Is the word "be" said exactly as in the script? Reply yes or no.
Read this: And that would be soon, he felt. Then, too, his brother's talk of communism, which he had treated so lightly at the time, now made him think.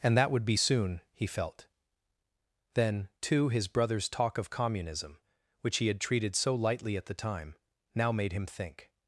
yes